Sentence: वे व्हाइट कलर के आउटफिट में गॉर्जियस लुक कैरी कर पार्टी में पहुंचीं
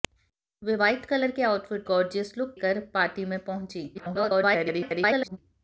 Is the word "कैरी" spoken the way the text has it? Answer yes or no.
no